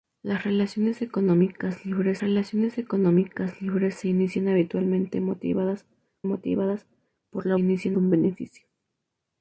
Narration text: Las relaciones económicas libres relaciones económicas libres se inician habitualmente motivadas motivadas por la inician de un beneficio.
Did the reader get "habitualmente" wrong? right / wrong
right